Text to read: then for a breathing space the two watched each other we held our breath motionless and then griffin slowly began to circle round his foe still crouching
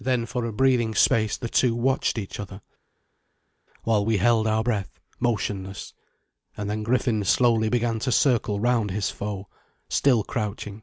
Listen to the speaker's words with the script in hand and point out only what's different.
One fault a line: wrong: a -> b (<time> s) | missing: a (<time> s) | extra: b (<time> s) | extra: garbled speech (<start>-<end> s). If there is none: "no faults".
extra: while (3.8 s)